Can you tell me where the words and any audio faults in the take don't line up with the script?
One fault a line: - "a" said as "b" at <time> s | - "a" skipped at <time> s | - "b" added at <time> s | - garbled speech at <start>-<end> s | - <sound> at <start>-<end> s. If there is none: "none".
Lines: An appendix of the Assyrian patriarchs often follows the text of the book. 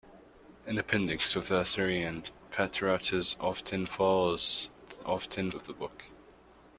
- "text" said as "often" at 5.0 s